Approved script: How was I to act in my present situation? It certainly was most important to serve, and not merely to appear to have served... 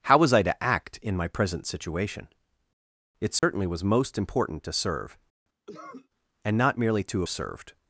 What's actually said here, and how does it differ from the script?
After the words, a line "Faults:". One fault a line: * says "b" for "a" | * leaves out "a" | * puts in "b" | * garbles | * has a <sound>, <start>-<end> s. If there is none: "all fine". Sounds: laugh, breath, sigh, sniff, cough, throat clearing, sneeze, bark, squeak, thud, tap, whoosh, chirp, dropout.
How was I to act in my present situation? It certainly was most important to serve, and not merely to served...
Faults:
* has a dropout, 3.4-3.4 s
* has a cough, 5.7-6.1 s
* leaves out "appear to have"